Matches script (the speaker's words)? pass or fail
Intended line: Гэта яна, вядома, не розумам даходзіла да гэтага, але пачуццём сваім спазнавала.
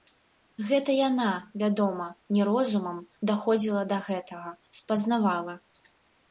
fail